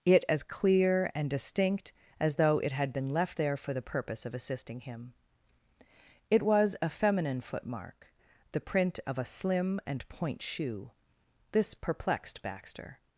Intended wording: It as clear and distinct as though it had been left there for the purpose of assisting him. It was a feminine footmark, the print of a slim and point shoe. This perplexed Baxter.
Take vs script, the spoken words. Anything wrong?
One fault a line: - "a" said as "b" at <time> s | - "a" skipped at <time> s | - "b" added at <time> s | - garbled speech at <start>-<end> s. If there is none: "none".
none